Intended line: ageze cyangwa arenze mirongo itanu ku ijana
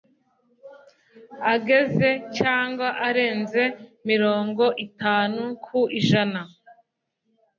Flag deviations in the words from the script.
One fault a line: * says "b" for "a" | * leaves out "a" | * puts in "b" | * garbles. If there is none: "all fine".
all fine